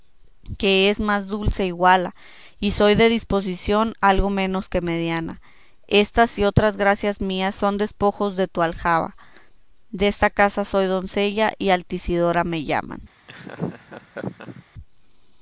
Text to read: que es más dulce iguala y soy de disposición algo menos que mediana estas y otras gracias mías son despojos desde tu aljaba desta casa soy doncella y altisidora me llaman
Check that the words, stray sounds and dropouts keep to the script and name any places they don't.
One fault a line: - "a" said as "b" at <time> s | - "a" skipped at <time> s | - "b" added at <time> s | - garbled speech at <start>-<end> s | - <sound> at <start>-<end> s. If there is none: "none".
- "desde" said as "de" at 8.3 s
- laugh at 13.3-14.6 s